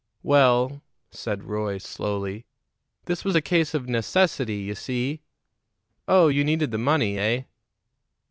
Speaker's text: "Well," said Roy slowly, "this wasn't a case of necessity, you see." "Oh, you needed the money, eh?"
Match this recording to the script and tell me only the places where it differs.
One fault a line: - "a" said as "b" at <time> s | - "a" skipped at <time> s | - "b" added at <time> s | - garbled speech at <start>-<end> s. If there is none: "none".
- "wasn't" said as "was" at 3.2 s